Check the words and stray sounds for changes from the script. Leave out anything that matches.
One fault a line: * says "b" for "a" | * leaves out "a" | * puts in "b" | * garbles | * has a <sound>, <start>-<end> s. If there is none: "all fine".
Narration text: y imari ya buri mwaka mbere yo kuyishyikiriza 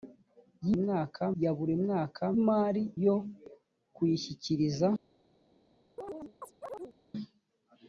* says "mwaka" for "imari"
* says "imari" for "mbere"
* has a chirp, 6.0-7.0 s